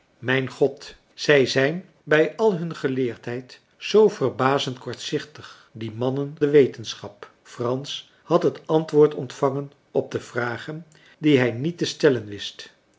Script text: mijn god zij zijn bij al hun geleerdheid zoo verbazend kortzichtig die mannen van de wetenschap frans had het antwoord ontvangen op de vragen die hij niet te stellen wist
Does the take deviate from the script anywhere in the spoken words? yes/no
yes